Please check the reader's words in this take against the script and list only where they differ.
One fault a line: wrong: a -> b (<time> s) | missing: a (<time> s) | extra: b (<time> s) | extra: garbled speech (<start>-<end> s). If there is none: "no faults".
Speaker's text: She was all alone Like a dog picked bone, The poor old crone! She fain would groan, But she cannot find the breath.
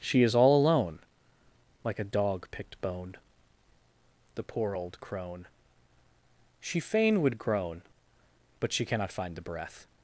wrong: was -> is (0.2 s)